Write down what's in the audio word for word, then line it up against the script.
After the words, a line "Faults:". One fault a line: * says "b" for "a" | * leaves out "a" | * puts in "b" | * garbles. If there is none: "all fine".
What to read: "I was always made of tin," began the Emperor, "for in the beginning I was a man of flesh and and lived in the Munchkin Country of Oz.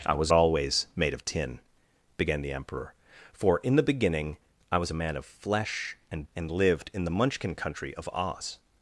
"I was always made of tin," began the Emperor, "for in the beginning I was a man of flesh and and lived in the Munchkin Country of Oz.
Faults:
all fine